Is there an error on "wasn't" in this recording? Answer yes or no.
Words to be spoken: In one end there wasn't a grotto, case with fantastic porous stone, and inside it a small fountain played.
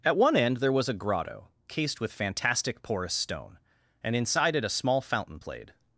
yes